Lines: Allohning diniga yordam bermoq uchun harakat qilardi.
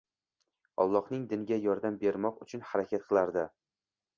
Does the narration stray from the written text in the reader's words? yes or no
no